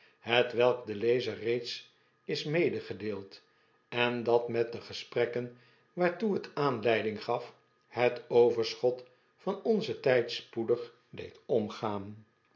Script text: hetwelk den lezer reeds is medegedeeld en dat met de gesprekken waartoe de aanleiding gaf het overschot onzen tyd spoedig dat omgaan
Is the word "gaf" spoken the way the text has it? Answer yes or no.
yes